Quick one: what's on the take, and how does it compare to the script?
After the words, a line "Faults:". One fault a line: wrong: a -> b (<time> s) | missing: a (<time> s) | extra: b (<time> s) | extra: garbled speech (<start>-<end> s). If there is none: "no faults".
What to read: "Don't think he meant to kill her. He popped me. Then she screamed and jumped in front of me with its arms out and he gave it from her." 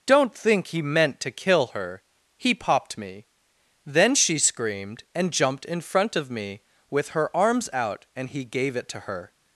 "Don't think he meant to kill her. He popped me. Then she screamed and jumped in front of me with her arms out and he gave it to her."
Faults:
wrong: its -> her (7.1 s)
wrong: from -> to (8.9 s)